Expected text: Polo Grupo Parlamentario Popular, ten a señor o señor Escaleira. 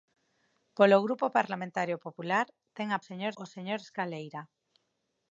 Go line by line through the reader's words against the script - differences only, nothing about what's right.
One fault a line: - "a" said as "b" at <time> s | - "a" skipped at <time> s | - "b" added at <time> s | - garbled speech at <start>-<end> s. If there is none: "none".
none